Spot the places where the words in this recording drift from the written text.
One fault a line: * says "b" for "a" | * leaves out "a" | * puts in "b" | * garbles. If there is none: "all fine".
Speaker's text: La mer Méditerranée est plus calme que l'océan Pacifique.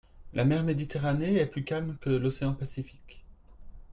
all fine